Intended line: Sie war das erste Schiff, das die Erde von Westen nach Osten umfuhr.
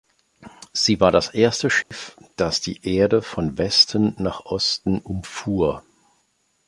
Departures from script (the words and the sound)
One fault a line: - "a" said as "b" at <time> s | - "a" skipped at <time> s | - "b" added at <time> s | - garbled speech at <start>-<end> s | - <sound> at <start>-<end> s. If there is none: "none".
- dropout at 1.8-1.9 s